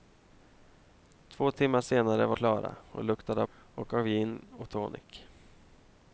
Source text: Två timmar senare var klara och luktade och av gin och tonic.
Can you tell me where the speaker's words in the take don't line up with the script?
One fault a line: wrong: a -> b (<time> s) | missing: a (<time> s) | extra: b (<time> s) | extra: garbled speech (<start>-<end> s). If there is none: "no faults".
no faults